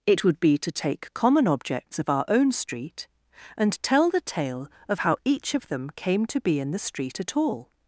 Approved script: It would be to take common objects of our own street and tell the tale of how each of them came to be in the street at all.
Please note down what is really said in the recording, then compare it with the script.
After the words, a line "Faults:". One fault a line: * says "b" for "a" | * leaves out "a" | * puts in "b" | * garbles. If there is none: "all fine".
It would be to take common objects of our own street and tell the tale of how each of them came to be in the street at all.
Faults:
all fine